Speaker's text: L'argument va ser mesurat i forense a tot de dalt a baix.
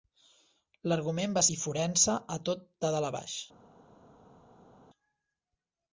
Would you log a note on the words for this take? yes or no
yes